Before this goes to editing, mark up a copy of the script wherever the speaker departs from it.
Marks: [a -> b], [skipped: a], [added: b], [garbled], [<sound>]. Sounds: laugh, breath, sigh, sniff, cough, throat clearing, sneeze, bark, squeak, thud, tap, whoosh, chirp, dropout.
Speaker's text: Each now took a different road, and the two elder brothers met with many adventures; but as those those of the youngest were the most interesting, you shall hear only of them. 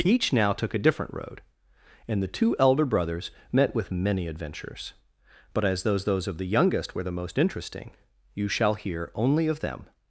Each now took a different road, and the two elder brothers met with many adventures; but as those those of the youngest were the most interesting, you shall hear only of them.